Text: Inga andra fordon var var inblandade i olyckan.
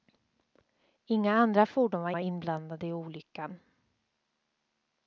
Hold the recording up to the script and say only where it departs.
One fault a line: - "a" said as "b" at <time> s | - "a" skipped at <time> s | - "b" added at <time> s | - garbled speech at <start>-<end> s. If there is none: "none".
none